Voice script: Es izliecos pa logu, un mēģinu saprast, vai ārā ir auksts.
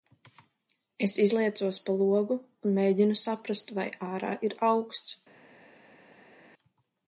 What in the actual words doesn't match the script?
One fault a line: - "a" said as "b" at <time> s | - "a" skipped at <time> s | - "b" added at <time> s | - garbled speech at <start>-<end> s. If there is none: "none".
none